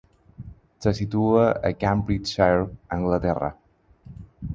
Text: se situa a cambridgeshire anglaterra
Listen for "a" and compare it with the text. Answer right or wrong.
right